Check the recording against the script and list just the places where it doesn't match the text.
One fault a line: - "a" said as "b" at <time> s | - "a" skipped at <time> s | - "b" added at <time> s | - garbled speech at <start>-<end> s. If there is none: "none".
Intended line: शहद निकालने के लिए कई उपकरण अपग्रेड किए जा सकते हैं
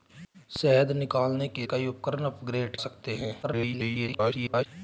- "लिए" skipped at 1.6 s
- "किए जा" skipped at 2.8 s
- garbled speech at 3.4-4.7 s